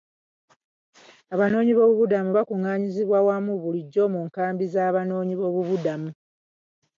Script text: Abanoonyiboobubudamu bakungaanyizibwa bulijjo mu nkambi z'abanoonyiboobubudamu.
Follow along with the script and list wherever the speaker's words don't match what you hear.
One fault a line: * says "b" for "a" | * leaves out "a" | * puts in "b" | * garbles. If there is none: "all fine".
* puts in "wamu"